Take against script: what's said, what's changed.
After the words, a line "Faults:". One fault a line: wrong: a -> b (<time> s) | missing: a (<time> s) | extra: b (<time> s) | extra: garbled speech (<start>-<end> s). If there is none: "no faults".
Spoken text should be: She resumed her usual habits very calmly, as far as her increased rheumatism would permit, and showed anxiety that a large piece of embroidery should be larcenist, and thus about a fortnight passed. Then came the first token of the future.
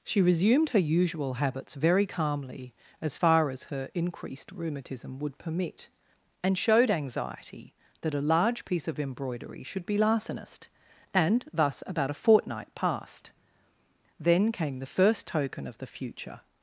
She resumed her usual habits very calmly, as far as her increased rheumatism would permit, and showed anxiety that a large piece of embroidery should be larcenist, and thus about a fortnight passed. Then came the first token of the future.
Faults:
no faults